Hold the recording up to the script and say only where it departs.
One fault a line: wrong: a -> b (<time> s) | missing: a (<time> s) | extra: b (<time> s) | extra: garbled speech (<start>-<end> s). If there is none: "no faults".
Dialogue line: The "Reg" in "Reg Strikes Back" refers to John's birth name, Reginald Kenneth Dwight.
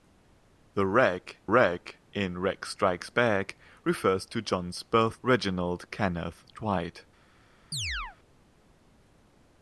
extra: reg (1.4 s)
missing: name (5.2 s)